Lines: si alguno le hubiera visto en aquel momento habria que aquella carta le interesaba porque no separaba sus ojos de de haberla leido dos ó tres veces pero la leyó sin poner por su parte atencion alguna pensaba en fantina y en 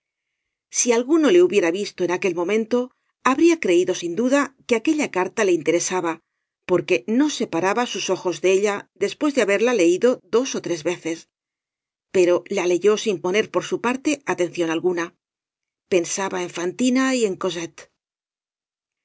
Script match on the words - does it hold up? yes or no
no